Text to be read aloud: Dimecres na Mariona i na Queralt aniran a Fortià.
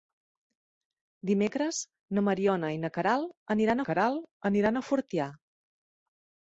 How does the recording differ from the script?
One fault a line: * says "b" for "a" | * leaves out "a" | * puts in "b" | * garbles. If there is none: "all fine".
* puts in "Queralt aniran"